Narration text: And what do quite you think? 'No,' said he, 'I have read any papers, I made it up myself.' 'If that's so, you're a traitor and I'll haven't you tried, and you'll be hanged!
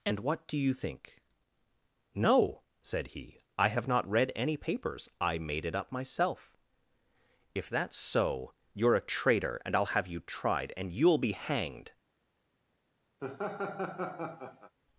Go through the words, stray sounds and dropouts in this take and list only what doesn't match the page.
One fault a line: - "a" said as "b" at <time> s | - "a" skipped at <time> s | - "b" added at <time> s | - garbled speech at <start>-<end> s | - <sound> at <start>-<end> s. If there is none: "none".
- "quite" skipped at 0.6 s
- "not" added at 3.9 s
- "haven't" said as "have" at 9.9 s
- laugh at 13.2-14.7 s